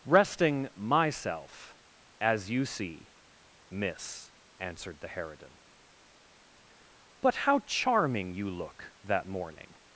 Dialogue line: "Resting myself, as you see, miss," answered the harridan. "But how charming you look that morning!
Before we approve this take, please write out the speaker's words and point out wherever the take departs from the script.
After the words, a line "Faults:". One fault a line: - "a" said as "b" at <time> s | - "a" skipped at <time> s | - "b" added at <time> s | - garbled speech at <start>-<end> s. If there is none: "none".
"Resting myself, as you see, miss," answered the harridan. "But how charming you look that morning!
Faults:
none